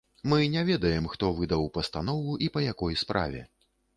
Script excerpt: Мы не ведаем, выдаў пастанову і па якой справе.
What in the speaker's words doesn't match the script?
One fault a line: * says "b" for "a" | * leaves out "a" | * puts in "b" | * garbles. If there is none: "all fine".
* puts in "хто"